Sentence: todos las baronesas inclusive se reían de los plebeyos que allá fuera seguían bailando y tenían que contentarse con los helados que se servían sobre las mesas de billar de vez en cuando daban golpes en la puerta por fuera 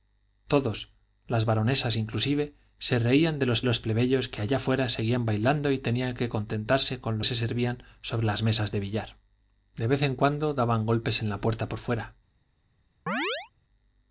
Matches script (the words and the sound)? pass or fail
fail